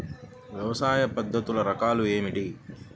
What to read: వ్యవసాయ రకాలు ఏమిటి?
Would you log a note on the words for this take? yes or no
yes